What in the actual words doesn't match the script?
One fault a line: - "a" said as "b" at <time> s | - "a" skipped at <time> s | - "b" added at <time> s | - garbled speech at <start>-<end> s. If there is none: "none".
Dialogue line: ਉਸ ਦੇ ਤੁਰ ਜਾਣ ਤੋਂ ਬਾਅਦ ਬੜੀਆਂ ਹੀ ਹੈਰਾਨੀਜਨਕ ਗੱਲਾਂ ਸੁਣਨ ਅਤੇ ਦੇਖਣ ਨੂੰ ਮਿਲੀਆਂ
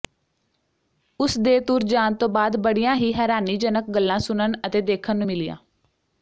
none